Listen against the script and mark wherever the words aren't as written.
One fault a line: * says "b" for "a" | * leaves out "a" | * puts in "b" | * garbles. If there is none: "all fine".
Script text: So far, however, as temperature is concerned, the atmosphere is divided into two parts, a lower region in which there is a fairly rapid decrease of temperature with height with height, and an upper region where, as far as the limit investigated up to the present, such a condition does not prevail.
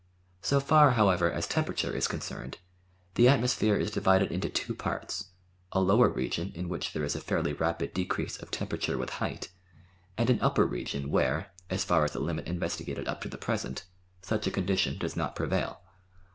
* leaves out "with height"